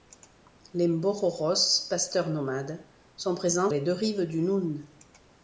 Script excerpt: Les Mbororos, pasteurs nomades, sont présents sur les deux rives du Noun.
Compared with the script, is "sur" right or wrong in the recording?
wrong